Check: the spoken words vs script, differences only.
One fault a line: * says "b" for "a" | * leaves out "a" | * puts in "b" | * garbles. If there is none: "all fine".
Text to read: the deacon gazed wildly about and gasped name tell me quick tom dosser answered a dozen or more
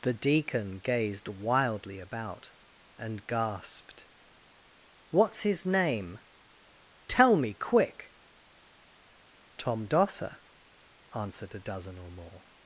* puts in "what's his"